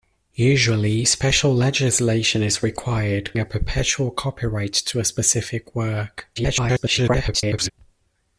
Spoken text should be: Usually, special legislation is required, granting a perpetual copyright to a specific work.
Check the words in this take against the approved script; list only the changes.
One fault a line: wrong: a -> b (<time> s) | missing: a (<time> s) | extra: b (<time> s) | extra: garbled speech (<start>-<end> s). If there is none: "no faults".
missing: granting (3.4 s)
extra: garbled speech (6.4-7.7 s)